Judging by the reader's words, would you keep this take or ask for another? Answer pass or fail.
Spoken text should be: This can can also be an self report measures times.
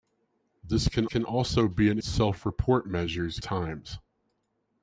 pass